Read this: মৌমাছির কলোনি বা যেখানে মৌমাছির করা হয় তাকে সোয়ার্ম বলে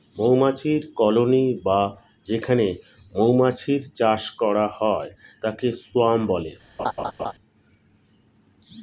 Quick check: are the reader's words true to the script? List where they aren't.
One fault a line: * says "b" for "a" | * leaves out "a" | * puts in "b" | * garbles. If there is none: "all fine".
* puts in "চাষ"